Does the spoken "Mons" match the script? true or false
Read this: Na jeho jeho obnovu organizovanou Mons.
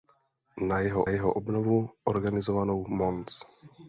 true